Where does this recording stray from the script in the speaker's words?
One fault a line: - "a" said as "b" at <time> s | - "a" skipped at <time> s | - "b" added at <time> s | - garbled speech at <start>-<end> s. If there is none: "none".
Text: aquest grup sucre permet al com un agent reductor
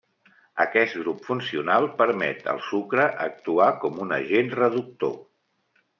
- "sucre" said as "funcional" at 1.3 s
- "sucre actuar" added at 2.7 s